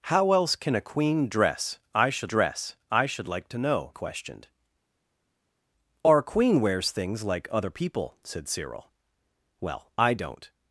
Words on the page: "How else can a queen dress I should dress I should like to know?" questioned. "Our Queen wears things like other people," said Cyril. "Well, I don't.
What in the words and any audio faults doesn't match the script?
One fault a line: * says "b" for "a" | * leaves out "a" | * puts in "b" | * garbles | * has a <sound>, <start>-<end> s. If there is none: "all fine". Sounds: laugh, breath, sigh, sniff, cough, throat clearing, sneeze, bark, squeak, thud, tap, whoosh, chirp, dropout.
all fine